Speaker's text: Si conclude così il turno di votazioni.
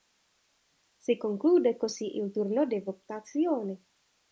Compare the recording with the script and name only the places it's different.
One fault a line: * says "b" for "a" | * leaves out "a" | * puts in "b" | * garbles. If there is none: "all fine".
all fine